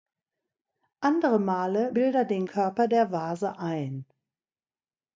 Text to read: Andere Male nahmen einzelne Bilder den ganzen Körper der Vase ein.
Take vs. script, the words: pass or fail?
fail